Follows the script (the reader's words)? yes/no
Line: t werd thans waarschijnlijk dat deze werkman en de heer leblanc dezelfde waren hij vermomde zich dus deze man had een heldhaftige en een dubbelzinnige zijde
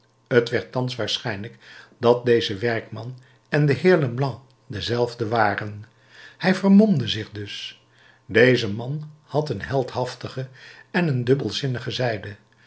yes